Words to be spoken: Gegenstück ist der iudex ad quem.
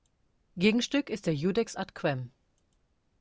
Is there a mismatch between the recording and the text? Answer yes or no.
no